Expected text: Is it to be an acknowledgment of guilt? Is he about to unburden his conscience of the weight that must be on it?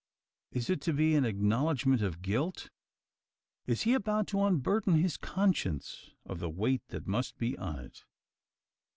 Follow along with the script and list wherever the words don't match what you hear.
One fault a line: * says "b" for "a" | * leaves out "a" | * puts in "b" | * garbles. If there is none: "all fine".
all fine